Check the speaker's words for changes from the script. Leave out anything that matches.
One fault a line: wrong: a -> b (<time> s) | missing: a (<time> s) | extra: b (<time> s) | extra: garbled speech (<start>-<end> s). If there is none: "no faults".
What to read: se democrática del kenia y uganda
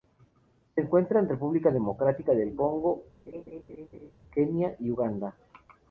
extra: encuentra en república (0.8 s)
extra: congo (2.5 s)